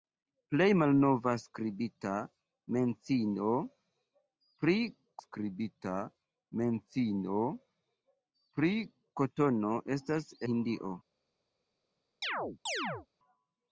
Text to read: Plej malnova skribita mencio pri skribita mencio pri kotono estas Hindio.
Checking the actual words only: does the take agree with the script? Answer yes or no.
yes